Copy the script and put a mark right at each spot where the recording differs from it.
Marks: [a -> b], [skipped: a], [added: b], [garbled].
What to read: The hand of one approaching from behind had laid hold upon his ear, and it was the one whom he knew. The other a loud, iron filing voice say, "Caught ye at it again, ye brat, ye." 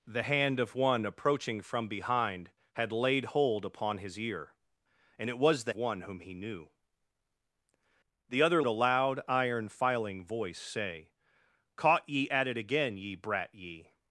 The hand of one approaching from behind had laid hold upon his ear, and it was the one whom he knew. The other a loud, iron filing voice say, "Caught ye at it again, ye brat, ye."